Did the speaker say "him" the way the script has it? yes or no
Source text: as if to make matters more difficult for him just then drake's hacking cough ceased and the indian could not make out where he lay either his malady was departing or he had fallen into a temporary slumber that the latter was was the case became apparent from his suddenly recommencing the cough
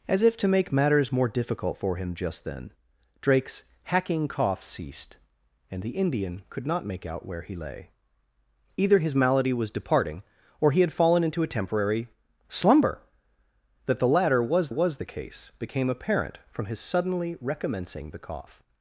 yes